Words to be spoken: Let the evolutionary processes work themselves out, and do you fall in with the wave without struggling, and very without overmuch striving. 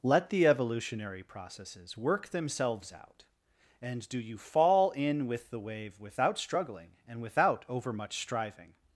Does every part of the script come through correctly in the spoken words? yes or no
no